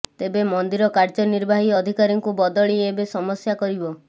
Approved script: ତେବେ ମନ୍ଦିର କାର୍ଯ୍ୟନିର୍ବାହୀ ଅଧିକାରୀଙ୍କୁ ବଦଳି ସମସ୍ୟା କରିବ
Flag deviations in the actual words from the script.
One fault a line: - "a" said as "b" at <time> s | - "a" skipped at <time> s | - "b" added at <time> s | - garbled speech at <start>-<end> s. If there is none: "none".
- "ଏବେ" added at 2.9 s